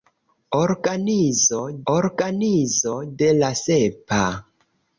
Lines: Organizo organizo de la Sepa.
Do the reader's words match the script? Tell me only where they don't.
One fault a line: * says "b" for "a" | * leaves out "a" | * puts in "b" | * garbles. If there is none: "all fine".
all fine